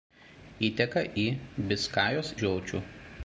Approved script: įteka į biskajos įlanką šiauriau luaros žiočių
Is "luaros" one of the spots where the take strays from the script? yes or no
yes